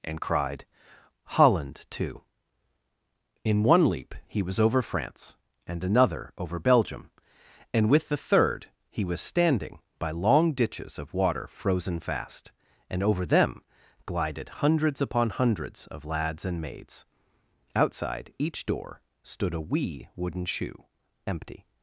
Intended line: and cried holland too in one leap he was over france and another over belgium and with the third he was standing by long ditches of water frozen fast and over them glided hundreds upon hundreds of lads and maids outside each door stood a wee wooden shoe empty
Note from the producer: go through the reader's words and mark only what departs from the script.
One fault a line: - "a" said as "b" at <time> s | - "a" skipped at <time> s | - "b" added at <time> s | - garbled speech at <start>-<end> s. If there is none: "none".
none